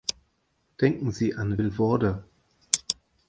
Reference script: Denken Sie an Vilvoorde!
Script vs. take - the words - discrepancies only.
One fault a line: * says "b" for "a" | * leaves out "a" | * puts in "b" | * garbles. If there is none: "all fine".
all fine